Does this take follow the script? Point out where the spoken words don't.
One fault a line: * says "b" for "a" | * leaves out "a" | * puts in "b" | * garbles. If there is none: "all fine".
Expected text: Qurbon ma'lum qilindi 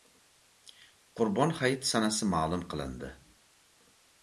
* puts in "hayiti sanasi"